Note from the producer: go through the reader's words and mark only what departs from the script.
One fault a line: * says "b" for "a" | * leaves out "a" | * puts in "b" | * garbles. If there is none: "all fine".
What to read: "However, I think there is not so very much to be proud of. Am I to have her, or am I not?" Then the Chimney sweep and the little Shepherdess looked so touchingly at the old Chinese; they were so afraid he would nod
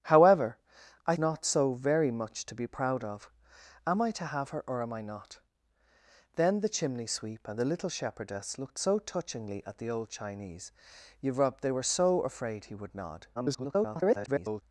* leaves out "think there is"
* garbles